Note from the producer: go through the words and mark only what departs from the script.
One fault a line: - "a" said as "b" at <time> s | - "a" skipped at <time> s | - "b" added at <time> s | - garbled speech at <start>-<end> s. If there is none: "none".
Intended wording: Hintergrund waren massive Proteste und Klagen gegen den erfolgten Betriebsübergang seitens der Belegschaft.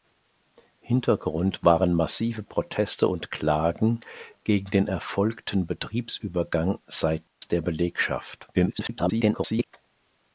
- garbled speech at 8.5-9.7 s